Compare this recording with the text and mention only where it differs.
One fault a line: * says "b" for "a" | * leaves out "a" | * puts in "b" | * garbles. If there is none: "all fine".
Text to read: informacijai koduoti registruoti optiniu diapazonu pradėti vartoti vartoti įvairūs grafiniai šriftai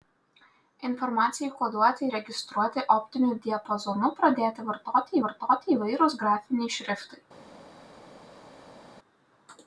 all fine